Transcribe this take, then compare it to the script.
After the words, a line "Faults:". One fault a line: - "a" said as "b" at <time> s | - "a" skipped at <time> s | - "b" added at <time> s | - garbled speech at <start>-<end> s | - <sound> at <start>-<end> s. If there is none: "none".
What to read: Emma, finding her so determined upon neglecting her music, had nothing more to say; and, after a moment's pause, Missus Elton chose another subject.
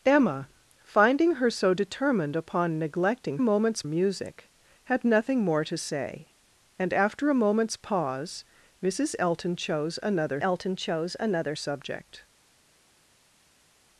Emma, finding her so determined upon neglecting moment's music, had nothing more to say; and, after a moment's pause, Missus Elton chose another Elton chose another subject.
Faults:
- "her" said as "moment's" at 3.4 s
- "Elton chose another" added at 10.4 s